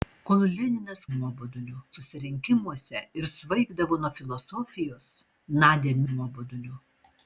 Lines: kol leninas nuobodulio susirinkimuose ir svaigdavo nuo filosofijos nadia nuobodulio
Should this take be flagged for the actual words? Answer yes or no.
no